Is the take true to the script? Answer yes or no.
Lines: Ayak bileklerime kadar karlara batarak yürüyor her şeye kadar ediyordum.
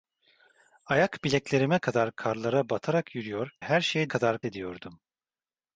yes